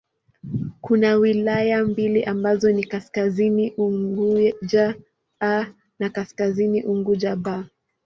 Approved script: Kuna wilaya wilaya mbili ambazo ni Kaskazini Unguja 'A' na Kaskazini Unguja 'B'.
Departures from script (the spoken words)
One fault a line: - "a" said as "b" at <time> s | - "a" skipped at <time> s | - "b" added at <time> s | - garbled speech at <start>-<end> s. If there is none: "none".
- "wilaya" skipped at 1.8 s